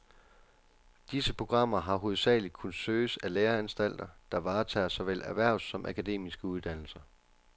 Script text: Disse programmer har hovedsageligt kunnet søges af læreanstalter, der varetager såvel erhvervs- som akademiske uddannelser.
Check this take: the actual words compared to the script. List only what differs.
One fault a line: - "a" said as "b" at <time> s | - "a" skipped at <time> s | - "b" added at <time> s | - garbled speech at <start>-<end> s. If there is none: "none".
none